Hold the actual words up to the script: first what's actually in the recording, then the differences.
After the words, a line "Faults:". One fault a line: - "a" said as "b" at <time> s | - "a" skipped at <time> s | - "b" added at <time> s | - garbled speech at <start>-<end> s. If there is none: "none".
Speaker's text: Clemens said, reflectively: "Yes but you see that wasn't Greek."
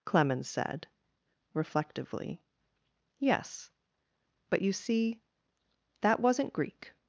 Clemens said, reflectively: "Yes but you see that wasn't Greek."
Faults:
none